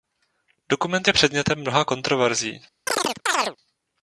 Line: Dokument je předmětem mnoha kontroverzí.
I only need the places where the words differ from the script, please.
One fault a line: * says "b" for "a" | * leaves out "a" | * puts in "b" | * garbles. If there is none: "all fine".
all fine